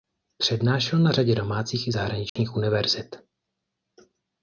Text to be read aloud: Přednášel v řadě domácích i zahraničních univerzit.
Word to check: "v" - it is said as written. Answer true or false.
false